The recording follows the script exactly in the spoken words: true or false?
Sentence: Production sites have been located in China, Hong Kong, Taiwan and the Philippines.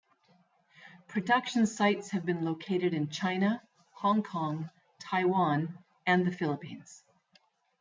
true